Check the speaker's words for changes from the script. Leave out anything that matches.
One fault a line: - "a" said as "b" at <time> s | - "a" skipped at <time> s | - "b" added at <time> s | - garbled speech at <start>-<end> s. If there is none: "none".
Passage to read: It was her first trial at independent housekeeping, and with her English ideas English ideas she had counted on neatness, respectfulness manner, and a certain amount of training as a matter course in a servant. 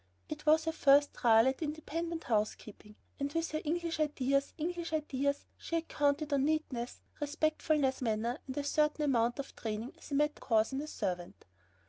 none